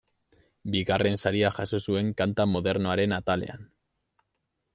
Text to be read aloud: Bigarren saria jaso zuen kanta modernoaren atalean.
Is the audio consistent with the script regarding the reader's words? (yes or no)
yes